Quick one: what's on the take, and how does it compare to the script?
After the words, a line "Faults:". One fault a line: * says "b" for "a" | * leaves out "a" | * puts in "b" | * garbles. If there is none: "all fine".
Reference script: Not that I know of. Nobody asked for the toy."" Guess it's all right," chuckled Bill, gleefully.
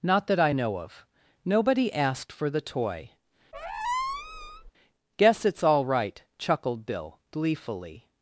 Not that I know of. Nobody asked for the toy."" Guess it's all right," chuckled Bill, gleefully.
Faults:
all fine